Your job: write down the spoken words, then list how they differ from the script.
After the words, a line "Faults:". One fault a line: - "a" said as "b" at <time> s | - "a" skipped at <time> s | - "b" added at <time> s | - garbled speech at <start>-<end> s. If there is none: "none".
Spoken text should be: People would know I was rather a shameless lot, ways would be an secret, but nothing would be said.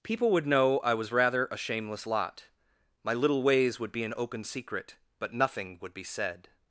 People would know I was rather a shameless lot, my little ways would be an open secret, but nothing would be said.
Faults:
- "my little" added at 3.0 s
- "open" added at 4.2 s